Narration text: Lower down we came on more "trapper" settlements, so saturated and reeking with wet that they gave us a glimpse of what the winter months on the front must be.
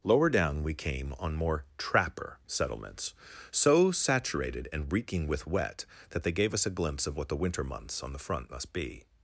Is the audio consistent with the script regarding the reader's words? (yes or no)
yes